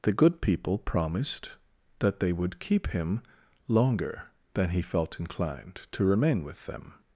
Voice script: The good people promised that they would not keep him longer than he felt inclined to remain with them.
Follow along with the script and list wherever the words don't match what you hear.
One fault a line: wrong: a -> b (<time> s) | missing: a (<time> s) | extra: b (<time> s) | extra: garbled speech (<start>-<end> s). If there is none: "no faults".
missing: not (2.6 s)